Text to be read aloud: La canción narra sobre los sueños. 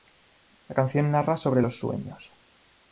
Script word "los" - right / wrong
right